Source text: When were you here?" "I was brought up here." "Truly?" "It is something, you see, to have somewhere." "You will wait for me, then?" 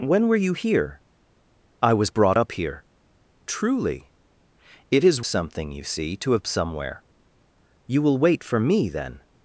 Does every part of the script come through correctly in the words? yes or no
yes